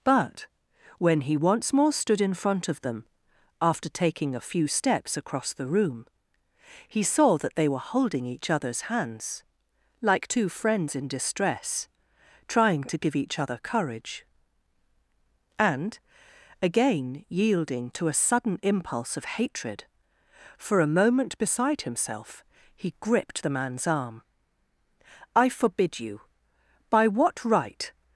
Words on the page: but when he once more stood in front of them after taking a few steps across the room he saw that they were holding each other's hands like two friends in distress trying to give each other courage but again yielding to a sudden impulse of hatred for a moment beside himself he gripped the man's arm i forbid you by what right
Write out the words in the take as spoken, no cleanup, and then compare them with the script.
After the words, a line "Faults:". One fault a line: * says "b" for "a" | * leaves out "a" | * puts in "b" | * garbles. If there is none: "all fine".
but when he once more stood in front of them after taking a few steps across the room he saw that they were holding each other's hands like two friends in distress trying to give each other courage and again yielding to a sudden impulse of hatred for a moment beside himself he gripped the man's arm i forbid you by what right
Faults:
* says "and" for "but"